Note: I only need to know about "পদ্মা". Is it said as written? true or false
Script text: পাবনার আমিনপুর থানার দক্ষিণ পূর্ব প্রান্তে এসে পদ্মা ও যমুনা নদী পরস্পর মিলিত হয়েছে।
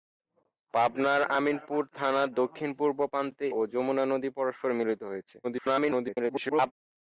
false